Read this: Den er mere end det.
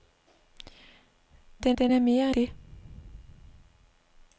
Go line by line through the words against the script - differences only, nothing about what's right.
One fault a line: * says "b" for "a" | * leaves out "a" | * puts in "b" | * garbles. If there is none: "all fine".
* puts in "den"
* leaves out "end"